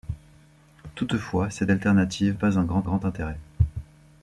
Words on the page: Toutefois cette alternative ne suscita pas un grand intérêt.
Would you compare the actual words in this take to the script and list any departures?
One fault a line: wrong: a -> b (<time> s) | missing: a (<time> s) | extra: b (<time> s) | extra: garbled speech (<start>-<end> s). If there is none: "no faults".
missing: ne suscita (2.4 s)
extra: grand (2.8 s)